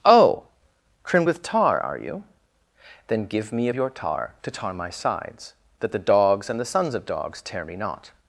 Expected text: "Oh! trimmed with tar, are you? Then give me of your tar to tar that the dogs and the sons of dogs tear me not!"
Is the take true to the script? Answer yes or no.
no